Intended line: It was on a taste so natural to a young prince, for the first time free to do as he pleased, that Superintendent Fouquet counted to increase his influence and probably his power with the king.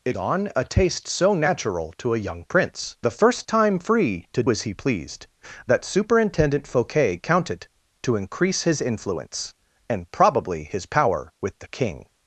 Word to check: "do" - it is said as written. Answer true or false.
false